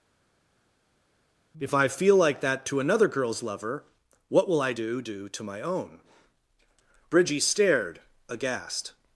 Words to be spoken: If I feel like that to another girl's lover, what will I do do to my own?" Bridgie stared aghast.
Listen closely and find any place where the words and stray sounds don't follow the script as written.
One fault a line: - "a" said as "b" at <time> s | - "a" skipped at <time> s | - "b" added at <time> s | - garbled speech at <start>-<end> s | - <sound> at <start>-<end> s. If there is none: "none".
none